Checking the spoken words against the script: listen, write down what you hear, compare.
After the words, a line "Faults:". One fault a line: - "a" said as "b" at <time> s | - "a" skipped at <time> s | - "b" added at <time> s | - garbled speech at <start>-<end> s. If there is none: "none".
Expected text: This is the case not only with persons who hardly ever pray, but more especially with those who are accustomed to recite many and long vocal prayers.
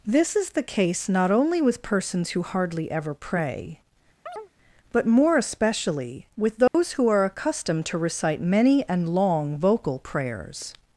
This is the case not only with persons who hardly ever pray, but more especially with those who are accustomed to recite many and long vocal prayers.
Faults:
none